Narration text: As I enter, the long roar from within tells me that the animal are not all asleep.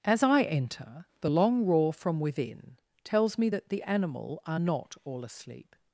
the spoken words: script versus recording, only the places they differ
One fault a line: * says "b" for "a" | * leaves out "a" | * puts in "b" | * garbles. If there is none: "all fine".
all fine